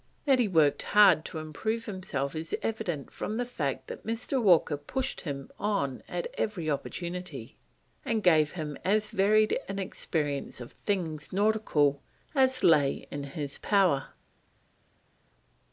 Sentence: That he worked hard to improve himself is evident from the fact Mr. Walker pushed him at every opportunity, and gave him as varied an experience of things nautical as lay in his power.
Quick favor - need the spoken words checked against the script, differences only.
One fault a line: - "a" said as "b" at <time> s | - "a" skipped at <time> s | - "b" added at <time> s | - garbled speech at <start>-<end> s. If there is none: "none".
- "that" added at 3.9 s
- "on" added at 5.6 s